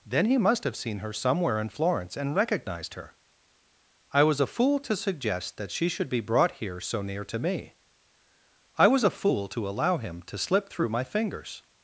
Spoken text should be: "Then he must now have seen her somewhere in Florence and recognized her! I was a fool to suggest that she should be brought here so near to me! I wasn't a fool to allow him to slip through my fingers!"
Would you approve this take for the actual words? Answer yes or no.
no